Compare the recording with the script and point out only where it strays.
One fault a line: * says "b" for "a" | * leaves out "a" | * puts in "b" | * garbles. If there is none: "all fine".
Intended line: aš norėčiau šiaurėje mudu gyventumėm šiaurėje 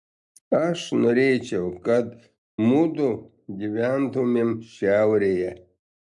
* says "kad" for "šiaurėje"